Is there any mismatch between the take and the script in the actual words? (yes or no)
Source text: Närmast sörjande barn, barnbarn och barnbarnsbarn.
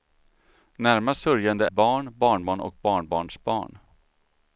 no